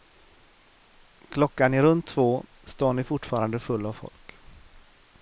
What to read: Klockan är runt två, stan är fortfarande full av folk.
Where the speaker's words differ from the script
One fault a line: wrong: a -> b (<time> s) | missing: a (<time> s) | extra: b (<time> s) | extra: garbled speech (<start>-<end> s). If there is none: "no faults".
no faults